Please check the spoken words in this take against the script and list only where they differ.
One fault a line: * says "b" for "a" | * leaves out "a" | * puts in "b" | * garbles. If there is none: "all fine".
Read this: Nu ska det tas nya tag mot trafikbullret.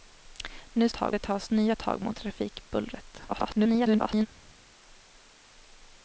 * says "tag" for "ska"
* garbles